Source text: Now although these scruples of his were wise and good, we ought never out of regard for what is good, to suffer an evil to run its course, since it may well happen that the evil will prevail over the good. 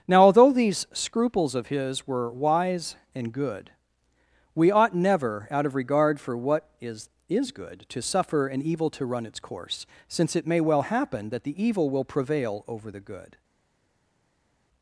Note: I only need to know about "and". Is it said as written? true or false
true